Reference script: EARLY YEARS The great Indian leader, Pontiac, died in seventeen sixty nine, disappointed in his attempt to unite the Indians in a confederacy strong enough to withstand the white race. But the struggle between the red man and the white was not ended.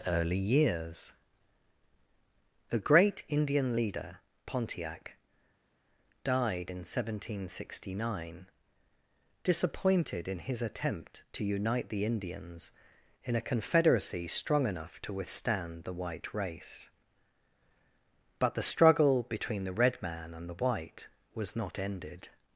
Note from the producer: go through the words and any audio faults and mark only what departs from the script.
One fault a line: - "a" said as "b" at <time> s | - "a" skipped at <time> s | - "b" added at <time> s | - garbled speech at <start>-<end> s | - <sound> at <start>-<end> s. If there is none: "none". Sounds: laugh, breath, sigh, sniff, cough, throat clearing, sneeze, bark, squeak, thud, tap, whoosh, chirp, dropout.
none